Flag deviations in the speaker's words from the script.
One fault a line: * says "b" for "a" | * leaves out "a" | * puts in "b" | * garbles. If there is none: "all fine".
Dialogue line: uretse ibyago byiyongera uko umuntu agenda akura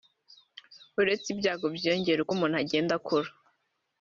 all fine